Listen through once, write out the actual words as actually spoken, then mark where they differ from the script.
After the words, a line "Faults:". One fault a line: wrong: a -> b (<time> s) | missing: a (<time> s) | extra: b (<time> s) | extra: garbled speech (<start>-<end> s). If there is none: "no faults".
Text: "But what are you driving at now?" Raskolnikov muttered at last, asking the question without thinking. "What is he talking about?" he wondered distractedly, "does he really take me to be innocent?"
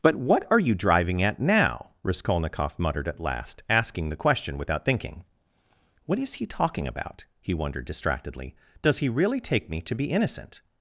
"But what are you driving at now?" Raskolnikov muttered at last, asking the question without thinking. "What is he talking about?" he wondered distractedly, "does he really take me to be innocent?"
Faults:
no faults